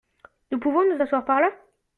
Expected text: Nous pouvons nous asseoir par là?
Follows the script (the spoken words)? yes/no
yes